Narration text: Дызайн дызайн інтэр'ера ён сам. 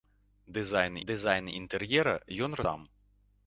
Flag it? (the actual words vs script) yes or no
no